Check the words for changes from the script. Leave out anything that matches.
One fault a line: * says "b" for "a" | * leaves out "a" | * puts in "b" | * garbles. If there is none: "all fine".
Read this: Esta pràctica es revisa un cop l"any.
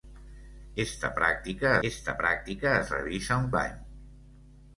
* puts in "esta pràctica"
* leaves out "cop"